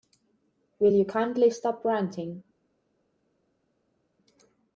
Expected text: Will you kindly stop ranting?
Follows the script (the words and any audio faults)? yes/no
yes